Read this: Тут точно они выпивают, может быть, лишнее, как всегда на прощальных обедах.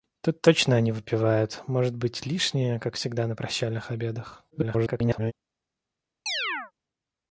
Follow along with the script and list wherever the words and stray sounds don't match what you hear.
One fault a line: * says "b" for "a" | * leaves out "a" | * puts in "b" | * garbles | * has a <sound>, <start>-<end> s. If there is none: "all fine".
* garbles
* has a chirp, 6.3-6.7 s